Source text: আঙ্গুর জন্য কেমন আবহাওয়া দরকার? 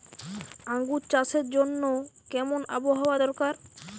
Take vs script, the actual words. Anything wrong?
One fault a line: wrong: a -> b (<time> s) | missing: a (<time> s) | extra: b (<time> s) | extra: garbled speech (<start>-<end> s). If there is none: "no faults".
extra: চাষের (1.1 s)